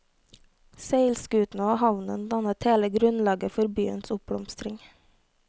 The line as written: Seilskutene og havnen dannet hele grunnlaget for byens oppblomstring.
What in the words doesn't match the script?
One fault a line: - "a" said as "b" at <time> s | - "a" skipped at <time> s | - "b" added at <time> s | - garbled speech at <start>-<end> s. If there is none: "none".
none